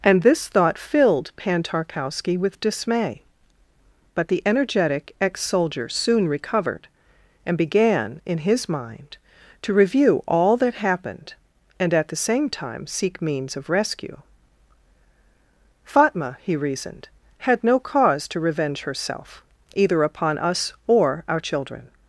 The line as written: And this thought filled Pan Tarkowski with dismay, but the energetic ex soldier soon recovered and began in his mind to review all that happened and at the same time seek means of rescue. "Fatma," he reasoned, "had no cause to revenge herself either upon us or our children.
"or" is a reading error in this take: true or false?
false